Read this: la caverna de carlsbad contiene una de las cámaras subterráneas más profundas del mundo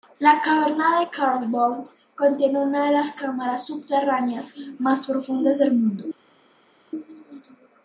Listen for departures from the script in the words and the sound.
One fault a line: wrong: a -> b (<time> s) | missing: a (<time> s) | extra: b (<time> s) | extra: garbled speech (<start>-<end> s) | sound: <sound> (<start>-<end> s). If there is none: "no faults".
no faults